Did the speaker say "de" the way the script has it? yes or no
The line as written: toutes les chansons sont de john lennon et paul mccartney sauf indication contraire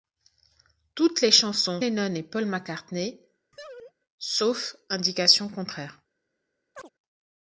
no